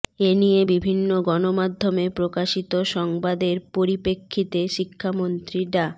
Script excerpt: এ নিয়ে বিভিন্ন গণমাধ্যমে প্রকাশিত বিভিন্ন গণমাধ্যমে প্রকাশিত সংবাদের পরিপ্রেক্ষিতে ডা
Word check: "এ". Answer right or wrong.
right